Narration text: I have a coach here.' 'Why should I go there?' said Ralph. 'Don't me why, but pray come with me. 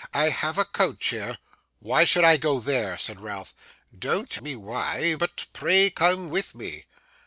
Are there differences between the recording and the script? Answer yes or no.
no